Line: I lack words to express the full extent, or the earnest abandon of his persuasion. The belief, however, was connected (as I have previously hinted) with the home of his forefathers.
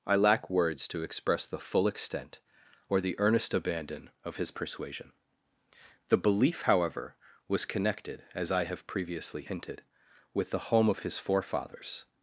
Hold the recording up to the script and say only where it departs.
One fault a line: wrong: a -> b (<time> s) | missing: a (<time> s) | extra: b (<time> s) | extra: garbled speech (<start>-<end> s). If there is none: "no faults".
no faults